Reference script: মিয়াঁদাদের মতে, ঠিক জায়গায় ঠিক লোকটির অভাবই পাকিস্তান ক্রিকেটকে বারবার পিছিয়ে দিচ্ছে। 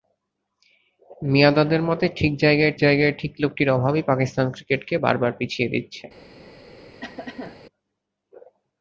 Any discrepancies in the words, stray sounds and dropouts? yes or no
yes